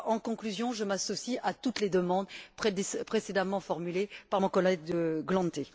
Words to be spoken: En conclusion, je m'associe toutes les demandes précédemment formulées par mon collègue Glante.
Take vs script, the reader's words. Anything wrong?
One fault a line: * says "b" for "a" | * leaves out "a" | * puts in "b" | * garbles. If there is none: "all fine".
* puts in "à"